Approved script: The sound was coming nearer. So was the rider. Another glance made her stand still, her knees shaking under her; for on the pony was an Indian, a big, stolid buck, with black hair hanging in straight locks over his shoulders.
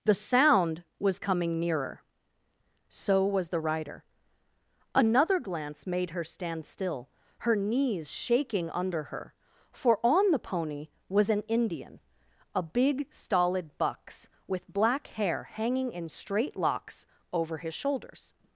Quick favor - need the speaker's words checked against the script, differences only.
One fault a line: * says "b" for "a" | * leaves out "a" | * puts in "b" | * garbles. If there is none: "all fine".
* says "bucks" for "buck"